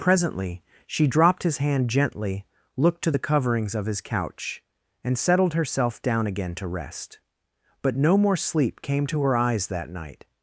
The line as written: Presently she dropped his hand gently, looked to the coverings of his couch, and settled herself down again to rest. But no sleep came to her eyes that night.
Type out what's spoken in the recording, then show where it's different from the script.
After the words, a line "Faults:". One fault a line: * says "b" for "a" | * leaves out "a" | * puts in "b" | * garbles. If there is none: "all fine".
Presently she dropped his hand gently, looked to the coverings of his couch, and settled herself down again to rest. But no more sleep came to her eyes that night.
Faults:
* puts in "more"